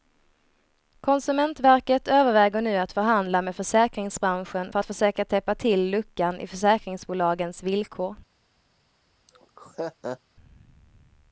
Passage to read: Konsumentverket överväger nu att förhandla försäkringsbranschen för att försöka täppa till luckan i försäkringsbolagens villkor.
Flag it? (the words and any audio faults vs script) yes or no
yes